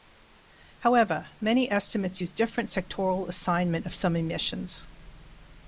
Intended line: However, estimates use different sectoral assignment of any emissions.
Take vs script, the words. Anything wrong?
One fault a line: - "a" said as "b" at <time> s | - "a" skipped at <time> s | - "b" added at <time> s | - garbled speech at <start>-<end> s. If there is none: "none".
- "many" added at 1.4 s
- "any" said as "some" at 3.9 s